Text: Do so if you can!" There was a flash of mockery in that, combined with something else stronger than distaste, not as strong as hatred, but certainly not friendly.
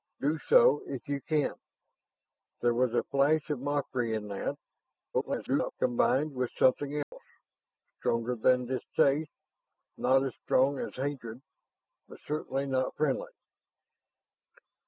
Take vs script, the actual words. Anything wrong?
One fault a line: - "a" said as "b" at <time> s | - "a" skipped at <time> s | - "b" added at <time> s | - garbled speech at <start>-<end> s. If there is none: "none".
- garbled speech at 5.1-5.7 s